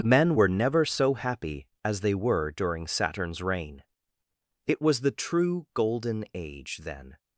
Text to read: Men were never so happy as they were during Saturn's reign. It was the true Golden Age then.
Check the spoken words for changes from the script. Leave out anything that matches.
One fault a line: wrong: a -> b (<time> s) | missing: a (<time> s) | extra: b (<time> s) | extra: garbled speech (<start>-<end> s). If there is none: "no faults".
no faults